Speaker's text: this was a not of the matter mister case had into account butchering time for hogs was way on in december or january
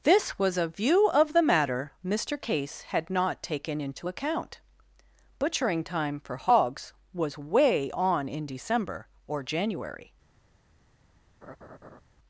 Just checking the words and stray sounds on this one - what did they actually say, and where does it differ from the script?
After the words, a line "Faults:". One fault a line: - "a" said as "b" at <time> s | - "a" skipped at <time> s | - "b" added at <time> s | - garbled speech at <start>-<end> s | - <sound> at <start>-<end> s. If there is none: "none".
this was a view of the matter mister case had not taken into account butchering time for hogs was way on in december or january
Faults:
- "not" said as "view" at 0.7 s
- "not taken" added at 3.1 s
- laugh at 11.4-12.0 s